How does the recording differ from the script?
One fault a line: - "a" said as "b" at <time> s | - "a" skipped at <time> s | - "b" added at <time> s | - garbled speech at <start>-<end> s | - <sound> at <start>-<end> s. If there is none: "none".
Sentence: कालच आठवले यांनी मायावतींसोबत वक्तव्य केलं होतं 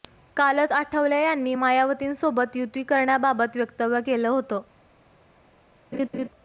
- "युती करण्याबाबत" added at 2.6 s
- laugh at 5.9-6.3 s